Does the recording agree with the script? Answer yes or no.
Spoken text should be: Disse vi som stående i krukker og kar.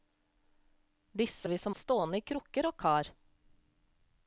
yes